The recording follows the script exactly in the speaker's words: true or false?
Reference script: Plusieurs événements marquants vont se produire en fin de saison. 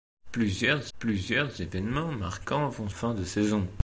false